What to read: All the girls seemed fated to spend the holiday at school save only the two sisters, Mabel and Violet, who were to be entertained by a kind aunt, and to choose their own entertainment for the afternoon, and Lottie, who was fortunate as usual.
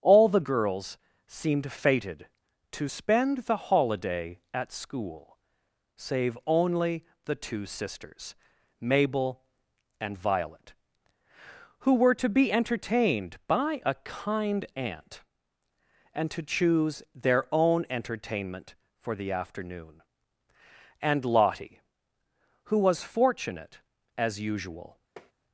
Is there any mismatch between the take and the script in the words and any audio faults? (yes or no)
yes